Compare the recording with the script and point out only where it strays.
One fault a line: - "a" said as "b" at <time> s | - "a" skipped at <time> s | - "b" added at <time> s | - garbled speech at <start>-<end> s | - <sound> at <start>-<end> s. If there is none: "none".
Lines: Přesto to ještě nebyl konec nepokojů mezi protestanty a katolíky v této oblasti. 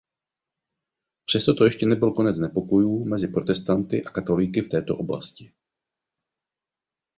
none